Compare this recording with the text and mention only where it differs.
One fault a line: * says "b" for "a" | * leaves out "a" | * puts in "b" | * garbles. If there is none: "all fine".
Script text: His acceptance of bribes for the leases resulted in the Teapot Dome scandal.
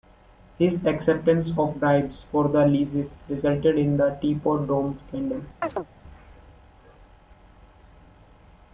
all fine